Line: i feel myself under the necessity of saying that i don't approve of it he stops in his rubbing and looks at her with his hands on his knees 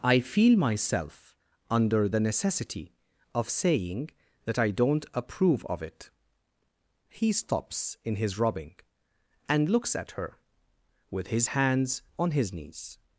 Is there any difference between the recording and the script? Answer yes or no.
no